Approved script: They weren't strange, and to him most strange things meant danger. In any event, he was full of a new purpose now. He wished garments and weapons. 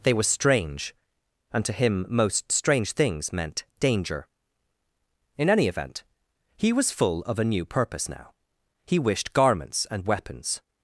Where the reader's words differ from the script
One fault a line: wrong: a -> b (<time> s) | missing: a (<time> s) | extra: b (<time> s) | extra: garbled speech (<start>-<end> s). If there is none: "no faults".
wrong: weren't -> were (0.1 s)